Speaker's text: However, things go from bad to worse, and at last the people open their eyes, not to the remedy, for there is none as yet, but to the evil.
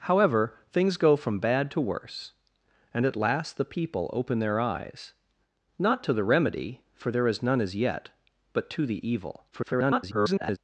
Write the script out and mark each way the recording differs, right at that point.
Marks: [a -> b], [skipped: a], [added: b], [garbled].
However, things go from bad to worse, and at last the people open their eyes, not to the remedy, for there is none as yet, but to the evil. [garbled]